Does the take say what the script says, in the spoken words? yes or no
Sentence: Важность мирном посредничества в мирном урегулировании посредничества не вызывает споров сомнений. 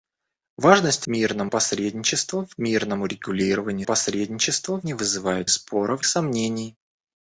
yes